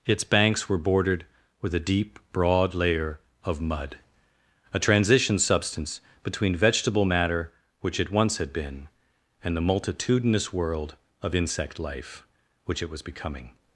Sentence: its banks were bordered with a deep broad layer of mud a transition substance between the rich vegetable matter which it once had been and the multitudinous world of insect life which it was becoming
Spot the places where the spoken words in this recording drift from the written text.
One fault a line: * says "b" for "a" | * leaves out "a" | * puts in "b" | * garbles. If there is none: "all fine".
* leaves out "the rich"